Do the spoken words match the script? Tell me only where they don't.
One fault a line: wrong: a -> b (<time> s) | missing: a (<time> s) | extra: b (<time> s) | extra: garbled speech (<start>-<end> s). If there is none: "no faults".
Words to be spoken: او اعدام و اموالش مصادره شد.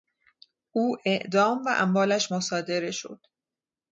no faults